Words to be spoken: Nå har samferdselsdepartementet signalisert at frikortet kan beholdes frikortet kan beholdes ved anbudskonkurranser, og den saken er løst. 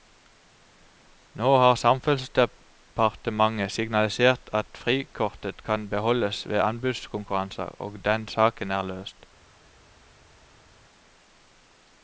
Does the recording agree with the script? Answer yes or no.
no